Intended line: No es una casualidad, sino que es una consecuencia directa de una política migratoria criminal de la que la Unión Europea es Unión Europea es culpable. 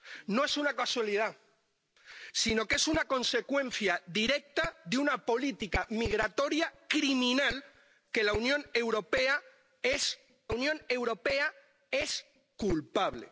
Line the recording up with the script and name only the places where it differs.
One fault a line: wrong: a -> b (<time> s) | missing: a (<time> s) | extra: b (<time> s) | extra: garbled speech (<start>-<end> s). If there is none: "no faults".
no faults